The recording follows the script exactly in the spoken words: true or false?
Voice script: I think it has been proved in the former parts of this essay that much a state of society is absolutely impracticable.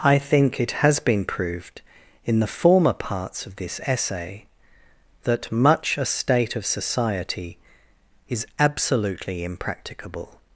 true